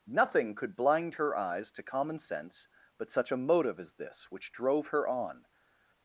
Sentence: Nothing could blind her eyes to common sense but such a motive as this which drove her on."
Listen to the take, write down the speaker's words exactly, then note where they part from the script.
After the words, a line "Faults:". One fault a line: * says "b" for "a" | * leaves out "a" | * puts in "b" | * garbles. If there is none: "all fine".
Nothing could blind her eyes to common sense but such a motive as this which drove her on."
Faults:
all fine